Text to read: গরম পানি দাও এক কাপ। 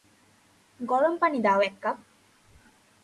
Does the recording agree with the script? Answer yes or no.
yes